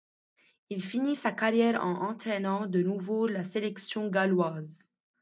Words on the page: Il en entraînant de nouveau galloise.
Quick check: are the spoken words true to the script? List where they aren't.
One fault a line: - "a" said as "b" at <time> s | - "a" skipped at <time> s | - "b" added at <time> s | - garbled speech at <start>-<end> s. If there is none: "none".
- "finit sa carrière" added at 0.8 s
- "la sélection" added at 3.3 s